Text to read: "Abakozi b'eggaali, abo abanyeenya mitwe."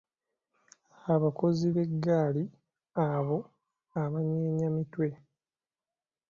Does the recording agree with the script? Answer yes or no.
yes